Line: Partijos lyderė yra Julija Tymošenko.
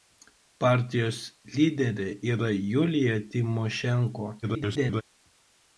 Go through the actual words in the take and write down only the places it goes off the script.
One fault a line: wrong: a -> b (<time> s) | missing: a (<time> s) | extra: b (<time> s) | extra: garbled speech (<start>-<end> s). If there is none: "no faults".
extra: garbled speech (4.4-5.0 s)